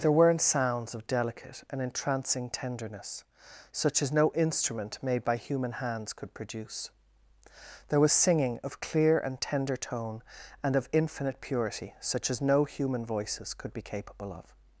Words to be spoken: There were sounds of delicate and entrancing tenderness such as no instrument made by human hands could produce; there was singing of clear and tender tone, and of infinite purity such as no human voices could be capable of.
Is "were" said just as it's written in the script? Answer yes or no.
no